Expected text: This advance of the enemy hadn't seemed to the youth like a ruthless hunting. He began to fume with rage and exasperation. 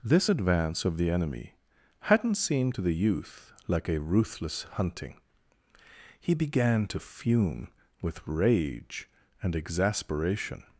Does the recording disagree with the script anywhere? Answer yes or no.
no